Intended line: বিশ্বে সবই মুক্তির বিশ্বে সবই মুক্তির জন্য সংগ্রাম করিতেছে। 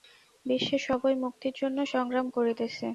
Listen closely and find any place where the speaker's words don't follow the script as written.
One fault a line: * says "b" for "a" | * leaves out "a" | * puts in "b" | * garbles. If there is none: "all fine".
* leaves out "বিশ্বে সবই মুক্তির"